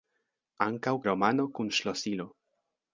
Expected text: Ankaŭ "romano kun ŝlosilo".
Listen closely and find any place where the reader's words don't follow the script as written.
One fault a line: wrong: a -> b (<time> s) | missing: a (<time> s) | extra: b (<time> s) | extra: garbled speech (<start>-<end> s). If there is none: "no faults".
no faults